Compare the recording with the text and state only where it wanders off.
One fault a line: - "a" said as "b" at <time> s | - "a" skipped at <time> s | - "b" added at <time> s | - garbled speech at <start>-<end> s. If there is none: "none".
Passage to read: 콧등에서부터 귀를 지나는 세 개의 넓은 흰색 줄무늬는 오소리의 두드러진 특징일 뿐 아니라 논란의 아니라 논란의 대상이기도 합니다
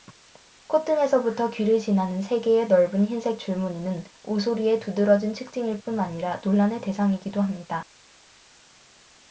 - "아니라 논란의" skipped at 6.8 s